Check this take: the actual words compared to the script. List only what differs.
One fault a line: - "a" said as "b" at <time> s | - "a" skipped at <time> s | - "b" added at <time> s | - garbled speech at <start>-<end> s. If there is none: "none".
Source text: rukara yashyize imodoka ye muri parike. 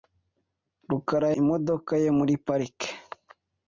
- "yashyize" skipped at 1.3 s